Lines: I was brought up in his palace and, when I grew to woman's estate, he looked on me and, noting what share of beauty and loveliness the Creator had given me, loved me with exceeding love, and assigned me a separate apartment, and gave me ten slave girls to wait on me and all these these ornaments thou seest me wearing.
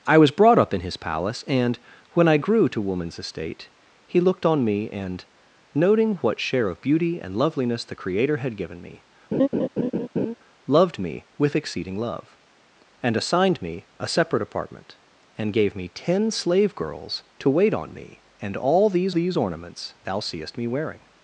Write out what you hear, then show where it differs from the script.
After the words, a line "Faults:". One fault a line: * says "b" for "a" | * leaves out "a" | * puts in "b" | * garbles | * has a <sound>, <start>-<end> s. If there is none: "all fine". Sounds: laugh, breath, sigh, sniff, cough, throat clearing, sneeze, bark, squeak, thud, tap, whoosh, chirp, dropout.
I was brought up in his palace and, when I grew to woman's estate, he looked on me and, noting what share of beauty and loveliness the Creator had given me, loved me with exceeding love, and assigned me a separate apartment, and gave me ten slave girls to wait on me and all these these ornaments thou seest me wearing.
Faults:
* has a laugh, 9.3-10.3 s